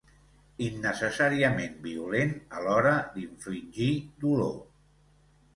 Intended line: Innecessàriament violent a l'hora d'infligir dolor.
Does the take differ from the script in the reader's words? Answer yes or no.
no